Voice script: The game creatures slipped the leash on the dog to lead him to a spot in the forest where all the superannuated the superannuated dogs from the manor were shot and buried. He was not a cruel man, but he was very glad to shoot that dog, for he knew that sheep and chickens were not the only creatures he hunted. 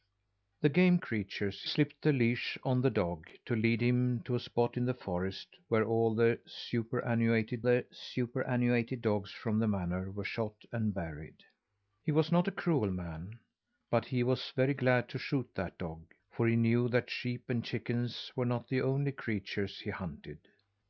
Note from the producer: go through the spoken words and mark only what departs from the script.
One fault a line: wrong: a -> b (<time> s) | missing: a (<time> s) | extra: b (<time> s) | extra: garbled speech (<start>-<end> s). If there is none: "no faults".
no faults